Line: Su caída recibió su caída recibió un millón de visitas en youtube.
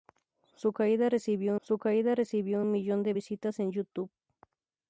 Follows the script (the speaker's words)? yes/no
yes